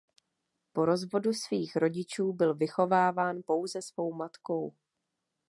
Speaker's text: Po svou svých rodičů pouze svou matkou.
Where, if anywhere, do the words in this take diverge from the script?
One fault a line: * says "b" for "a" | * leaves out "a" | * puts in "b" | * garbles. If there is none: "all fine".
* says "rozvodu" for "svou"
* puts in "byl vychováván"